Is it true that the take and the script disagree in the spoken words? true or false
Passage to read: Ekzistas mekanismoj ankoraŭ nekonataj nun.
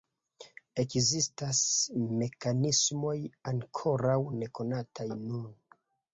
false